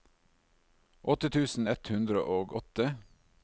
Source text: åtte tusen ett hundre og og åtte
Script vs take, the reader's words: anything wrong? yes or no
yes